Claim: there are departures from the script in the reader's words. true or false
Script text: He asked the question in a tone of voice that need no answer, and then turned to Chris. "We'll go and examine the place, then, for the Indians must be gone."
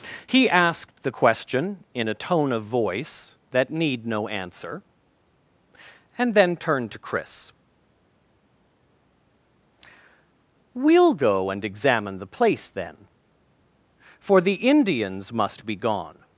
false